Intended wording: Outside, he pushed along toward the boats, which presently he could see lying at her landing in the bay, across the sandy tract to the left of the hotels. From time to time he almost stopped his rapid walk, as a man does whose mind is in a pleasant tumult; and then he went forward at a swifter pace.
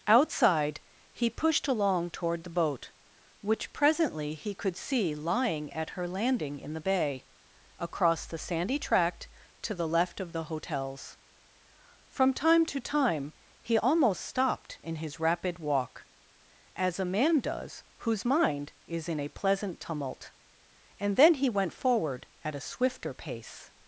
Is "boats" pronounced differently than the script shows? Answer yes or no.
yes